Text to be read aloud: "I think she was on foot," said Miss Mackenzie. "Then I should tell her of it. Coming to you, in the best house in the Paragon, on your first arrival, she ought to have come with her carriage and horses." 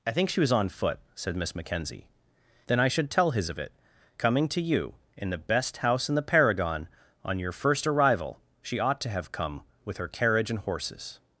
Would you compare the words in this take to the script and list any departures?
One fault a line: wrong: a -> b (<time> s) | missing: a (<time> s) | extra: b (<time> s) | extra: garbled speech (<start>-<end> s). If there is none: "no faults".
wrong: her -> his (3.3 s)